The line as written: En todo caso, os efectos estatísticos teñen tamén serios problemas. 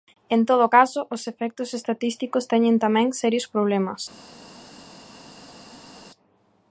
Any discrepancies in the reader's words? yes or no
no